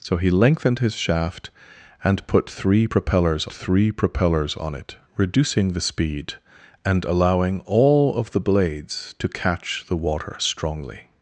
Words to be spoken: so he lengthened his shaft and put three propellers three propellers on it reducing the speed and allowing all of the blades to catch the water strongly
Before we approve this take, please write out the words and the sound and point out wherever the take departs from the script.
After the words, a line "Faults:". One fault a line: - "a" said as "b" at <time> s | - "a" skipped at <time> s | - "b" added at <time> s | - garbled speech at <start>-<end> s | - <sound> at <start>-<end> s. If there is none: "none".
so he lengthened his shaft and put three propellers three propellers on it reducing the speed and allowing all of the blades to catch the water strongly
Faults:
none